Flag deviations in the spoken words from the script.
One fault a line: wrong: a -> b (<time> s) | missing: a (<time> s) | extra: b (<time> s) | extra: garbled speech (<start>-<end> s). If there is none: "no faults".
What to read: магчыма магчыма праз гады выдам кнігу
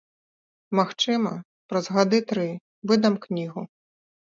missing: магчыма (1.3 s)
extra: тры (2.3 s)